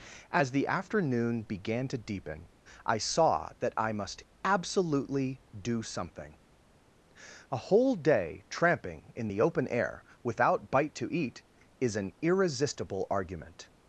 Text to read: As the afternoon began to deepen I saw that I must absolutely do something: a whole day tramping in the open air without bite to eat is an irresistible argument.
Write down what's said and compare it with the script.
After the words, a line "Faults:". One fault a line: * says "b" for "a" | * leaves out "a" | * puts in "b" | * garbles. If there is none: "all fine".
As the afternoon began to deepen I saw that I must absolutely do something: a whole day tramping in the open air without bite to eat is an irresistible argument.
Faults:
all fine